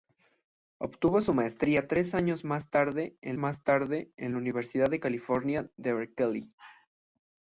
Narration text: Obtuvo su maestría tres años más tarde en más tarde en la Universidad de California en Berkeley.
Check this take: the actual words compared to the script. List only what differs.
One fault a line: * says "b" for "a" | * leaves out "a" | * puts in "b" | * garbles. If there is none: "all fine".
all fine